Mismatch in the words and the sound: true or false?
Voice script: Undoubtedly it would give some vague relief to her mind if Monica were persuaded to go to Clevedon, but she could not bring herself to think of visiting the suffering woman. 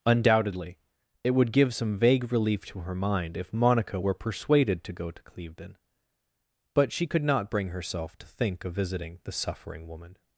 false